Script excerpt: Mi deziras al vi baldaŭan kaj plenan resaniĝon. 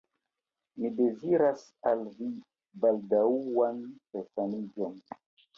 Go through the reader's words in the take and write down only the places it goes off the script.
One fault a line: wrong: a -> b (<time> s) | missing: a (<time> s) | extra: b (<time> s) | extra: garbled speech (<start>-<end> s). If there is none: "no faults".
missing: kaj plenan (3.8 s)